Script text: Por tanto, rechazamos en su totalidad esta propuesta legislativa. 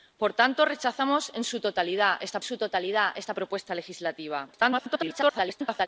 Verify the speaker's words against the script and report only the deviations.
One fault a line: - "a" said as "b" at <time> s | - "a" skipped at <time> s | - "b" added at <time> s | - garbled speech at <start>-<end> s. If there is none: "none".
- "su totalidad esta" added at 2.4 s
- garbled speech at 4.5-5.9 s